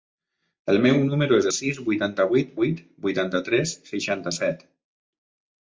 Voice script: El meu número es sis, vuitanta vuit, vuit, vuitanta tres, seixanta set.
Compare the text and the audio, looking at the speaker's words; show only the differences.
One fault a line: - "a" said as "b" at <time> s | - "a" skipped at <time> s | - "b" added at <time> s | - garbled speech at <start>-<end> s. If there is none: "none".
none